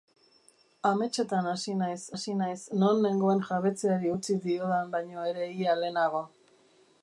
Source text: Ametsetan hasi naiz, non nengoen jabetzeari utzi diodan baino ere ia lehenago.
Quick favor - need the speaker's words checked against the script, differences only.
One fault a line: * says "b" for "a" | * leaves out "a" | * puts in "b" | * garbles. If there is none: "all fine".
* puts in "hasi naiz"